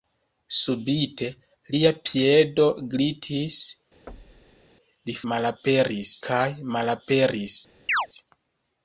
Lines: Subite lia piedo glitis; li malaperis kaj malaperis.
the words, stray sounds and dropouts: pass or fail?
fail